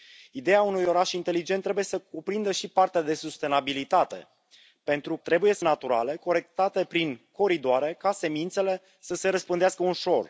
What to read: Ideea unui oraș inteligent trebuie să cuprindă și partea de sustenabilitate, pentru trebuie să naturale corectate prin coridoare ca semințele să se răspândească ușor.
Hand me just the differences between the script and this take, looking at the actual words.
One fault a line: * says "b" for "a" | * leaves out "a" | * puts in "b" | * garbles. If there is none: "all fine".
all fine